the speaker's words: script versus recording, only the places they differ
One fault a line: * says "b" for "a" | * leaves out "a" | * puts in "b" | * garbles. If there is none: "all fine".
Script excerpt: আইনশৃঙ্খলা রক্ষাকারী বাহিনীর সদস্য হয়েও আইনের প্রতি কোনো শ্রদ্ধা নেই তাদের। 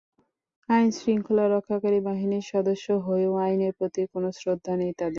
all fine